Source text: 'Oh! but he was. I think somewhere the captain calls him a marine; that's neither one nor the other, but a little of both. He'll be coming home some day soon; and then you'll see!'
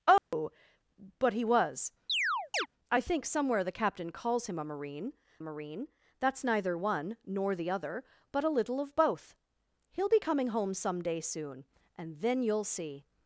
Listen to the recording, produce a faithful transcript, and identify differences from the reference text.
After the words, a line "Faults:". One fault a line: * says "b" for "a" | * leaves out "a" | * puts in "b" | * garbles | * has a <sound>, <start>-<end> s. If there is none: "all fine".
'Oh! but he was. I think somewhere the captain calls him a marine marine; that's neither one nor the other, but a little of both. He'll be coming home some day soon; and then you'll see!'
Faults:
* has a dropout, 0.2-0.3 s
* has a chirp, 2.1-2.7 s
* puts in "marine"